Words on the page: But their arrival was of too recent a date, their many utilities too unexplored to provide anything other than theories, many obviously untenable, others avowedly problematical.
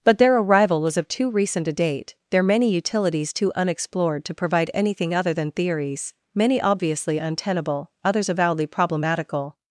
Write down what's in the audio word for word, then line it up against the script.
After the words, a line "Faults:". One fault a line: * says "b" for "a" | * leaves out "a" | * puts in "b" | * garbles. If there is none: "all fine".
But their arrival was of too recent a date, their many utilities too unexplored to provide anything other than theories, many obviously untenable, others avowedly problematical.
Faults:
all fine